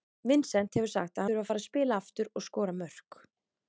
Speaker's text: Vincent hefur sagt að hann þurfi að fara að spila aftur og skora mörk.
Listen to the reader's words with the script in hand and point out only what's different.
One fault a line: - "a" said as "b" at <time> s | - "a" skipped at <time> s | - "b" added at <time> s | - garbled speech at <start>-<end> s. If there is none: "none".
- "hann" skipped at 1.3 s